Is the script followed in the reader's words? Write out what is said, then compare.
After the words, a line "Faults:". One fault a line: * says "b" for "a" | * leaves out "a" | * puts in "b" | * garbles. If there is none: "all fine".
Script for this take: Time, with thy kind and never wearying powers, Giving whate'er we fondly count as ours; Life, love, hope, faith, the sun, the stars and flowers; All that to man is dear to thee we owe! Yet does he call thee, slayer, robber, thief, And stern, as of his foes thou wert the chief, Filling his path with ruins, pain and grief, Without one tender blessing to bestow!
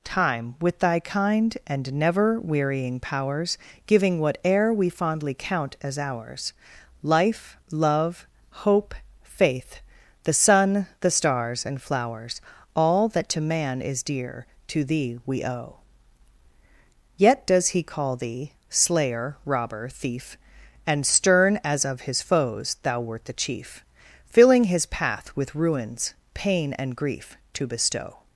Time, with thy kind and never wearying powers, Giving whate'er we fondly count as ours; Life, love, hope, faith, the sun, the stars and flowers; All that to man is dear to thee we owe! Yet does he call thee, slayer, robber, thief, And stern, as of his foes thou wert the chief, Filling his path with ruins, pain and grief, to bestow!
Faults:
* leaves out "Without one tender blessing"